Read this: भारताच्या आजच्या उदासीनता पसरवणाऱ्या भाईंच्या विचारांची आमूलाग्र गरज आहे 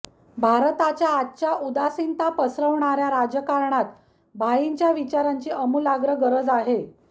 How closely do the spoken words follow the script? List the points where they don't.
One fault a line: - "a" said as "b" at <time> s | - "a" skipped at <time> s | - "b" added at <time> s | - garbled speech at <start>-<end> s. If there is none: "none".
- "राजकारणात" added at 3.1 s